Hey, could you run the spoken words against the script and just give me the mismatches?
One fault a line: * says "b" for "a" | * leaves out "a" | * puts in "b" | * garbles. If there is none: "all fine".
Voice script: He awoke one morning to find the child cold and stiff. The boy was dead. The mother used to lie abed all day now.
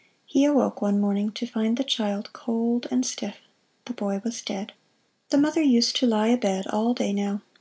all fine